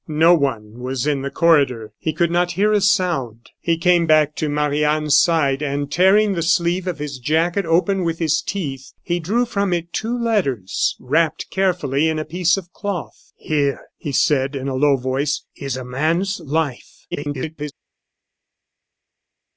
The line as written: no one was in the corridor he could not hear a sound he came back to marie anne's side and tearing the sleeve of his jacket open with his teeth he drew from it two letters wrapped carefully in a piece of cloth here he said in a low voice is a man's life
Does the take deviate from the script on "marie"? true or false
false